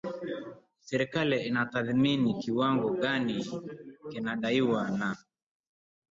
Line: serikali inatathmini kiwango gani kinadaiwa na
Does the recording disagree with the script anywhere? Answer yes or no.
no